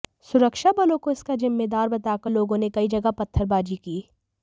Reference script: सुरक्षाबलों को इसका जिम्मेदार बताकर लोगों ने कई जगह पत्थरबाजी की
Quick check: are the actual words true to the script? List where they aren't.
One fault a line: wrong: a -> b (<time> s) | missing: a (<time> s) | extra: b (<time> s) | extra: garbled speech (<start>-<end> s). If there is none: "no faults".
no faults